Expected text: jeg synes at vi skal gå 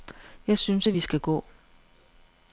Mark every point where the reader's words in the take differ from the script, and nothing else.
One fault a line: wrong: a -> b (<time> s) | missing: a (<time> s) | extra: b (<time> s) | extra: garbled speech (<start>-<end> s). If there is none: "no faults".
no faults